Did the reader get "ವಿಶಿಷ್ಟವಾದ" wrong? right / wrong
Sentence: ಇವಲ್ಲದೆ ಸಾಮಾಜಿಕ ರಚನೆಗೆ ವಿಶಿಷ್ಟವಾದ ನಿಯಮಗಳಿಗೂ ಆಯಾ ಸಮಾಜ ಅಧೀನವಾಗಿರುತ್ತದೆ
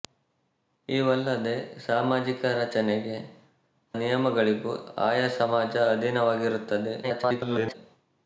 wrong